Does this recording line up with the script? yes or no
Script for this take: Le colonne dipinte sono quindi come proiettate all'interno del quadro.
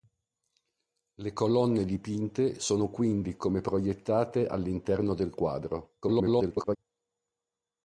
no